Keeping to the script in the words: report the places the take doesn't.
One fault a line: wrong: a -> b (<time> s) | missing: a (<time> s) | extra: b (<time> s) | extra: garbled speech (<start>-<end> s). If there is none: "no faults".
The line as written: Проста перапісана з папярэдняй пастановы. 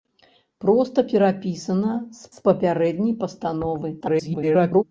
extra: з (2.3 s)
extra: garbled speech (4.0-4.8 s)